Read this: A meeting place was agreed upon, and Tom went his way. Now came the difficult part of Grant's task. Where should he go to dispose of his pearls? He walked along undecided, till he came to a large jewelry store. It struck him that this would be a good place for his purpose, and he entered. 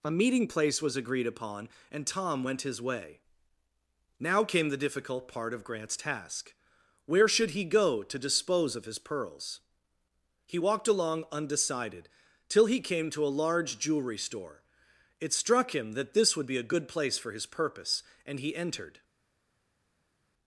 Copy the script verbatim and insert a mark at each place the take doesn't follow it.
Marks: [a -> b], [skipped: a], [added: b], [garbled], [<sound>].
A meeting place was agreed upon, and Tom went his way. Now came the difficult part of Grant's task. Where should he go to dispose of his pearls? He walked along undecided, till he came to a large jewelry store. It struck him that this would be a good place for his purpose, and he entered.